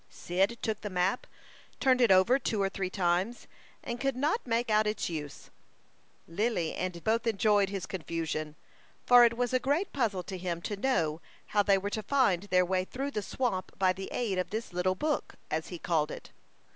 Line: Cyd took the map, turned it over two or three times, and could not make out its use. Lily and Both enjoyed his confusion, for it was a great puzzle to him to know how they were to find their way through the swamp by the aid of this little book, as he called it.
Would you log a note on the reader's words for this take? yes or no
no